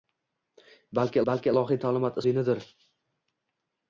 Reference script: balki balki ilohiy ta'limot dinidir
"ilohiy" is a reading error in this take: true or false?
false